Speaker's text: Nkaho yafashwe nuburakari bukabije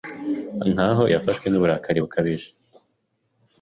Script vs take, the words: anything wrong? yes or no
no